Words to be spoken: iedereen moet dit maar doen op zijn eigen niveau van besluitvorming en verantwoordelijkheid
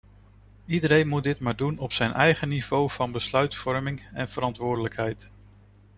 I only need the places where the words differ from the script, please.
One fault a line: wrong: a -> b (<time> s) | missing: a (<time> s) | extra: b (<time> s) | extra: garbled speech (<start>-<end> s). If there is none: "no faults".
no faults